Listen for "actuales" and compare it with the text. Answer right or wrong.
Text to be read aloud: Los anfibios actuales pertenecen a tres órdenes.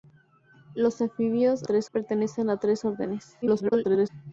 wrong